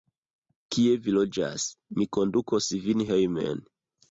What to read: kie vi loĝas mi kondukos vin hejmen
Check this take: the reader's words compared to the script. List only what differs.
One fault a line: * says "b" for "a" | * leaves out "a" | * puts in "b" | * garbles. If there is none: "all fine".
all fine